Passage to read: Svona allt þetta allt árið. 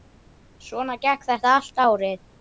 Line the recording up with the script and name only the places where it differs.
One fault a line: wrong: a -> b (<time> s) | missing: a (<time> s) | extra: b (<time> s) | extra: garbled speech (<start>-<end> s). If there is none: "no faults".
wrong: allt -> gekk (1.0 s)